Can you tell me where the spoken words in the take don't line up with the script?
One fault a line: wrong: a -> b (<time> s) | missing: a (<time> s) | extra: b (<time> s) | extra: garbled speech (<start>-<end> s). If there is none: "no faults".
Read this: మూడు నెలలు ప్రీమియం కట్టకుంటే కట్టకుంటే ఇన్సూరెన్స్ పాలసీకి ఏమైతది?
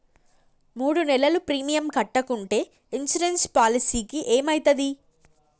missing: కట్టకుంటే (2.6 s)